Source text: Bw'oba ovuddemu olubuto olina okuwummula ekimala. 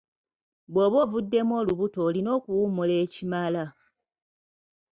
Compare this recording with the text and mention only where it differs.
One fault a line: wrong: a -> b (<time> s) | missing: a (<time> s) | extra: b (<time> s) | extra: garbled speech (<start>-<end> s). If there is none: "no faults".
no faults